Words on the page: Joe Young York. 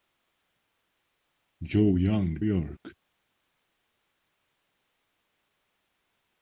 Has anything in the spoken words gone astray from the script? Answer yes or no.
no